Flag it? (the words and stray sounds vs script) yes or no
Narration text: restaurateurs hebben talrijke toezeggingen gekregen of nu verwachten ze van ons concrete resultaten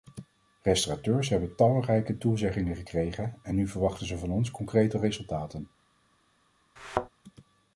yes